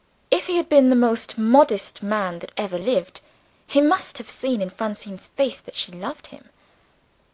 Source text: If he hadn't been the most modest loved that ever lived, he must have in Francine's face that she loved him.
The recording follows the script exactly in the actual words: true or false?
false